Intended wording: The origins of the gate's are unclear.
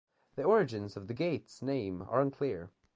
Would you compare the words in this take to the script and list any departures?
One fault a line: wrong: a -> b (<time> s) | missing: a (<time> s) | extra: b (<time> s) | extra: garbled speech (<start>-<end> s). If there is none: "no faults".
extra: name (1.6 s)